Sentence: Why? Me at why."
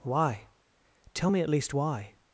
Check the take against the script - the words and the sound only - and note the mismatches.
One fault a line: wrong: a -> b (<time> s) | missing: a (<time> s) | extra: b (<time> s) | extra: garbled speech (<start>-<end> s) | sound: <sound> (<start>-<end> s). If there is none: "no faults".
extra: Tell (1.1 s)
extra: least (1.5 s)